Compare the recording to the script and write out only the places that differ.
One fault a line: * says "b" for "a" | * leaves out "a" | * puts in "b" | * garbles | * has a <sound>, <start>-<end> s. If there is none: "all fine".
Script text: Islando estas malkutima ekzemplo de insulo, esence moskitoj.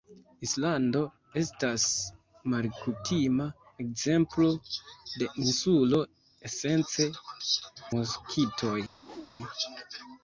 * has a whoosh, 8.9-9.3 s